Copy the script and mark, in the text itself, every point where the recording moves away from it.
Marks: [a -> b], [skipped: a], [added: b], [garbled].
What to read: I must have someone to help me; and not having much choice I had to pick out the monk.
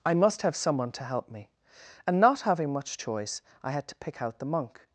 I must have someone to help me; and not having much choice I had to pick out the monk.